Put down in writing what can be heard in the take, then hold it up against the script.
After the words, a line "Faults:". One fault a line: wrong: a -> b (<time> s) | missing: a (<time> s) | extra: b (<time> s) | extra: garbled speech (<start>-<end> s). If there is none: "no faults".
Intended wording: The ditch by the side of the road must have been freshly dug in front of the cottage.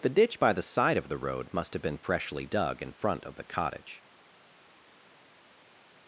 The ditch by the side of the road must have been freshly dug in front of the cottage.
Faults:
no faults